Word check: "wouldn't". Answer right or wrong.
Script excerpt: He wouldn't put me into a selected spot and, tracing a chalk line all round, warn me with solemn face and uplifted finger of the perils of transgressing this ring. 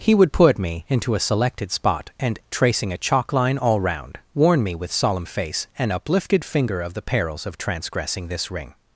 wrong